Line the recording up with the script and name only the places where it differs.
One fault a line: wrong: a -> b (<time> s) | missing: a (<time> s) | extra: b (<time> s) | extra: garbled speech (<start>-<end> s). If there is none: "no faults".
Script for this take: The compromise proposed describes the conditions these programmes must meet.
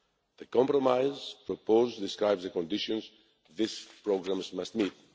no faults